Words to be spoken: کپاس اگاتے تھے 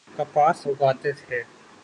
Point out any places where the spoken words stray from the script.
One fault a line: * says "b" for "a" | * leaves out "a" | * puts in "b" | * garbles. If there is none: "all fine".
all fine